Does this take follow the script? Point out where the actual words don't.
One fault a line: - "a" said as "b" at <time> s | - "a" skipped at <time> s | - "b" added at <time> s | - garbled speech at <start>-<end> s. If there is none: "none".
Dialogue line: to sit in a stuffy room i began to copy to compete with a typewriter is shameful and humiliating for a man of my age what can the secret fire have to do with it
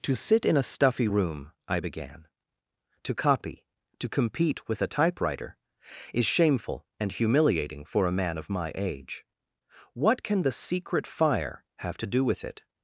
none